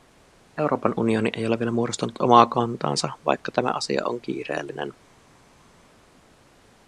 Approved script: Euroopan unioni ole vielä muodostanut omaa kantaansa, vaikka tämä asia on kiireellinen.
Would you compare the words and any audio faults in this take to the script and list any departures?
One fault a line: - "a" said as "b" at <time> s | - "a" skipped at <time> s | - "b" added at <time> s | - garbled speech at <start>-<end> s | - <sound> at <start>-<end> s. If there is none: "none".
- "ei" added at 1.3 s